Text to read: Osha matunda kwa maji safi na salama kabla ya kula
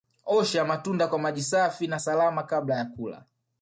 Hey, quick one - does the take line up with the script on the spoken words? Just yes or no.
yes